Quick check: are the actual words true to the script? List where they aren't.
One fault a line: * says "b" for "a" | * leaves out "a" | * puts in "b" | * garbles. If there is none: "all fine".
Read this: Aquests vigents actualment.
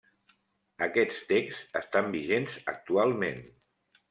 * puts in "texts estan"